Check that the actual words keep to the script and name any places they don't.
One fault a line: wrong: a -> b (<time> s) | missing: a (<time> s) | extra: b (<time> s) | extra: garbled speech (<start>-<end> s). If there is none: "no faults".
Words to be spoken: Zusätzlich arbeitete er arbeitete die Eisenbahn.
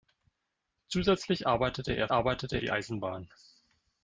no faults